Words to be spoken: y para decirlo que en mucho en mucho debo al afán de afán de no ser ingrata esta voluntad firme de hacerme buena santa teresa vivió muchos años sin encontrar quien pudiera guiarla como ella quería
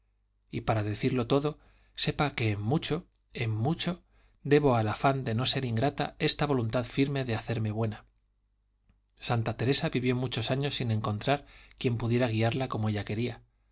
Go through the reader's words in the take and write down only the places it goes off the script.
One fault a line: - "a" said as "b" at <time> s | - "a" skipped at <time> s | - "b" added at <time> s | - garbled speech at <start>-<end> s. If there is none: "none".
- "todo sepa" added at 1.3 s
- "afán de" skipped at 5.3 s